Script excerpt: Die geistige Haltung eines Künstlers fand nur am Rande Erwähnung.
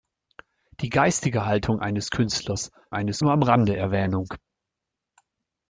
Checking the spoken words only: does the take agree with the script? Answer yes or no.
no